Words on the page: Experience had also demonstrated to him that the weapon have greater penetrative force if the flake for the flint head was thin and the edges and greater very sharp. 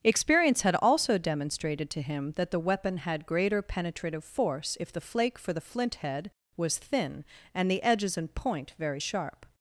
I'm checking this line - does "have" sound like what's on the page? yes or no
no